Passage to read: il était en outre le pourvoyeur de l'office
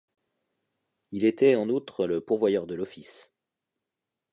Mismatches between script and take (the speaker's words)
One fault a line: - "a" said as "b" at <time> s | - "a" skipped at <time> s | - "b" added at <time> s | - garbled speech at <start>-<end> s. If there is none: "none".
none